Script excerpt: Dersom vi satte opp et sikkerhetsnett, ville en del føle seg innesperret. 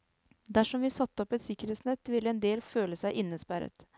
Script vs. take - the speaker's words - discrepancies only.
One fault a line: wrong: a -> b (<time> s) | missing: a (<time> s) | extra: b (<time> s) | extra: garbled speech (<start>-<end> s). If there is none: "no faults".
no faults